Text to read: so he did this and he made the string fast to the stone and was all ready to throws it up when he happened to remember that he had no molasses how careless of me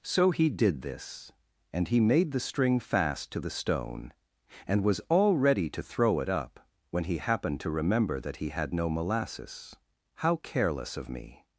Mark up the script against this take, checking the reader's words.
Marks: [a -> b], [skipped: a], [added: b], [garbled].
so he did this and he made the string fast to the stone and was all ready to [throws -> throw] it up when he happened to remember that he had no molasses how careless of me